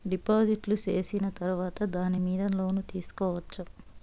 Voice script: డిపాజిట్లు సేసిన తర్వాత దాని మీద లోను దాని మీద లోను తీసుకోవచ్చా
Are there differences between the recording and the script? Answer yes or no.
yes